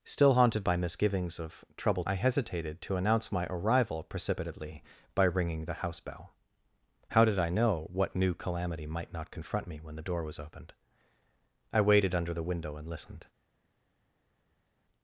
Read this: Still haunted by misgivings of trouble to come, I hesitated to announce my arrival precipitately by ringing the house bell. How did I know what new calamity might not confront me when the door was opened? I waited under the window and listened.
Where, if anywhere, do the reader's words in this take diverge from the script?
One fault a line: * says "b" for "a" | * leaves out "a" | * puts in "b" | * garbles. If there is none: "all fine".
* leaves out "to come"